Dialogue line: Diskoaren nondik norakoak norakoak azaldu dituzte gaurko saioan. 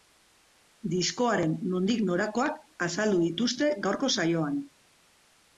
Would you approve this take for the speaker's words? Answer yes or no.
no